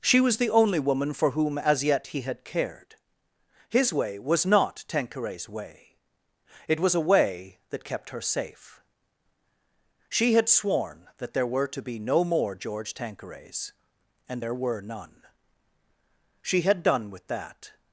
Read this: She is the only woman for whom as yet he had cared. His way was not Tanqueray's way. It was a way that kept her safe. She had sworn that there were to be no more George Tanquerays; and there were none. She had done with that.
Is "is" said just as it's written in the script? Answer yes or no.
no